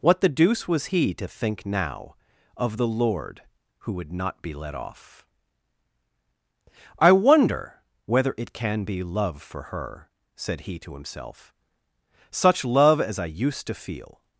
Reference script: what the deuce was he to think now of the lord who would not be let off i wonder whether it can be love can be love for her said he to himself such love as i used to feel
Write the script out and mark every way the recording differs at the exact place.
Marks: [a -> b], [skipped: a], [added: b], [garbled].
what the deuce was he to think now of the lord who would not be let off i wonder whether it can be love [skipped: can be love] for her said he to himself such love as i used to feel